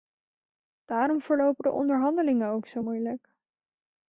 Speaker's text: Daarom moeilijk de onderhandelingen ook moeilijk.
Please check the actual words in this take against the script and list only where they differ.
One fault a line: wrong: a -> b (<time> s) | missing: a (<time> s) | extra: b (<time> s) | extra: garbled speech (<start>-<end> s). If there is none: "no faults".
wrong: moeilijk -> verlopen (1.2 s)
extra: zo (2.7 s)